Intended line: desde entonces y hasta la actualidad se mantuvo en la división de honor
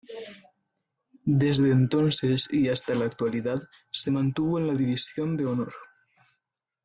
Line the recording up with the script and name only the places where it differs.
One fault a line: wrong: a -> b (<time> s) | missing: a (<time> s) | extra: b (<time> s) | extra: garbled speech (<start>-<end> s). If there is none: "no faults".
no faults